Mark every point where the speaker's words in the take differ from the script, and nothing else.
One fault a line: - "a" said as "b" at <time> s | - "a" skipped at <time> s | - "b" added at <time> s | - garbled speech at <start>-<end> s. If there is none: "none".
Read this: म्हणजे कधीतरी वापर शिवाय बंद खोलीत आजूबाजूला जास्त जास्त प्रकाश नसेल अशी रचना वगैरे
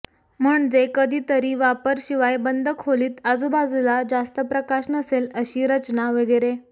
- "जास्त" skipped at 4.4 s